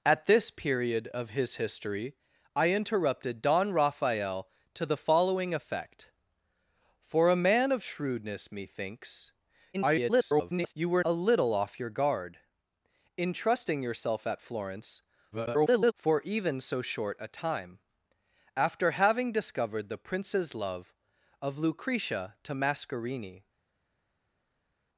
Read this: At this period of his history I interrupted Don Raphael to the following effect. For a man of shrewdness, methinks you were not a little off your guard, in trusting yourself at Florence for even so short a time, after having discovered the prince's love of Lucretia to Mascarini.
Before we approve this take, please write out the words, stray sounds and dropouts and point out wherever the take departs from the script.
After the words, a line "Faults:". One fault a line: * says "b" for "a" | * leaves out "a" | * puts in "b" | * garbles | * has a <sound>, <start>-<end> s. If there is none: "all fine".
At this period of his history I interrupted Don Raphael to the following effect. For a man of shrewdness, methinks [garbled] you were a little off your guard, in trusting yourself at Florence [garbled] for even so short a time, after having discovered the prince's love of Lucretia to Mascarini.
Faults:
* garbles
* leaves out "not"
* garbles